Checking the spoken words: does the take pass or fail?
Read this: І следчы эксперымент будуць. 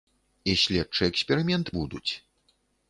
pass